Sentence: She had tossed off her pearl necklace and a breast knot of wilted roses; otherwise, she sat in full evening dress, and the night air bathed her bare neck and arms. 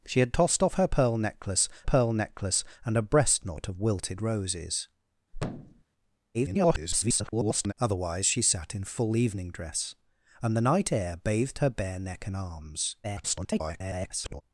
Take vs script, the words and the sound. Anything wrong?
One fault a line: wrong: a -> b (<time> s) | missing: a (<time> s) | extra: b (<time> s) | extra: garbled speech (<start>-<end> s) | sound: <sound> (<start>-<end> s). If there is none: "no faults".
extra: pearl necklace (1.8 s)
sound: thud (5.3-5.8 s)
extra: garbled speech (6.3-7.7 s)
extra: garbled speech (13.0-14.4 s)